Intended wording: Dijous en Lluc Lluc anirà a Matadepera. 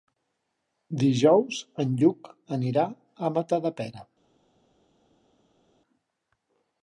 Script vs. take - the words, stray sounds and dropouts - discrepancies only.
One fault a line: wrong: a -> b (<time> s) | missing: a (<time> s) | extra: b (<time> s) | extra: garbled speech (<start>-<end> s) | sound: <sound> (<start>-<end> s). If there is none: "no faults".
missing: Lluc (2.3 s)